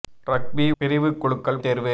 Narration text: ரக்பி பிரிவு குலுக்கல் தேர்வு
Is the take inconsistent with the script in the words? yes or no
no